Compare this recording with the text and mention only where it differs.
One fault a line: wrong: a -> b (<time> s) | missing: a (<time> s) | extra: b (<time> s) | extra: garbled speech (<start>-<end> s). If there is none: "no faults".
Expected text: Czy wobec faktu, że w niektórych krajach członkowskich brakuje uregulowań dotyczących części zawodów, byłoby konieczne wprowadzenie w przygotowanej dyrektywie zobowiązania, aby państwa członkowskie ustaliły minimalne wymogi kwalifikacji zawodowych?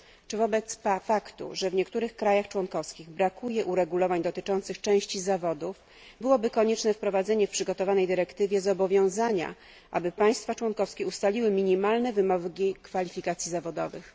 no faults